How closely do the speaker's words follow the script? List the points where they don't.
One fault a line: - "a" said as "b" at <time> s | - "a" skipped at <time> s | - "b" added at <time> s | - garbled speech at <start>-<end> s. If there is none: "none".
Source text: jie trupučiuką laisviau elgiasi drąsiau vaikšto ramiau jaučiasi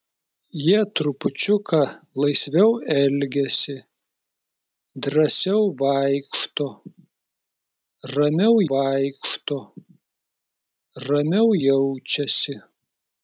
- "vaikšto ramiau" added at 8.7 s